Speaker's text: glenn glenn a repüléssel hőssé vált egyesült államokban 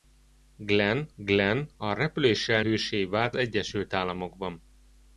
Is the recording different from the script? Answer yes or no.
no